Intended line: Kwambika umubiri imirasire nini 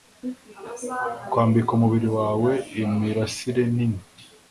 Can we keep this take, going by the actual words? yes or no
no